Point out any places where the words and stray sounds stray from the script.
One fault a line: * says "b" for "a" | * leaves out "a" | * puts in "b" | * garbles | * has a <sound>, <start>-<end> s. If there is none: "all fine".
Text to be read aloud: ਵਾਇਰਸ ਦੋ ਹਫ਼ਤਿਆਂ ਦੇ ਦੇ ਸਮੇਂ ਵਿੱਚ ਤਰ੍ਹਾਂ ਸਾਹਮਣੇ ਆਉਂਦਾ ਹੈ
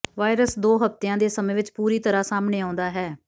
* leaves out "ਦੇ"
* puts in "ਪੂਰੀ"